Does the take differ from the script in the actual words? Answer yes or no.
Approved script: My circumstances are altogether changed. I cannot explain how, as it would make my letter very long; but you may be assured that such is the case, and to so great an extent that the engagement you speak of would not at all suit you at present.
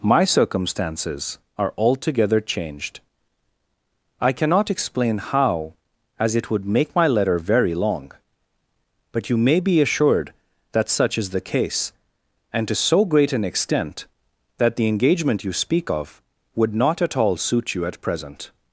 no